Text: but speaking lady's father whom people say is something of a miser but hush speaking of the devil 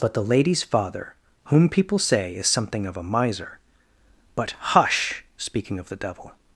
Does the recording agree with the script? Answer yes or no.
no